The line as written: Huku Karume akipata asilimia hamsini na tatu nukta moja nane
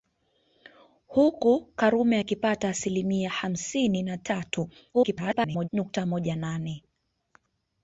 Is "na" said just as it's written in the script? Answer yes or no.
yes